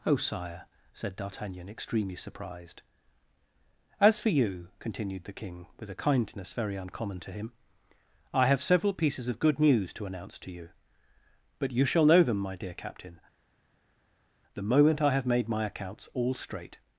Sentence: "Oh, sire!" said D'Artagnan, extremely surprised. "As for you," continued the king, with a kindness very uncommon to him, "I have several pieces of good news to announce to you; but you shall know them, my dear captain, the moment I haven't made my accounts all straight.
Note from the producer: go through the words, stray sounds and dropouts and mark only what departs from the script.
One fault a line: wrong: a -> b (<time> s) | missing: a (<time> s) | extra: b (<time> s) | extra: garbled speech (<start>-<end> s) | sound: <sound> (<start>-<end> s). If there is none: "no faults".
wrong: haven't -> have (15.1 s)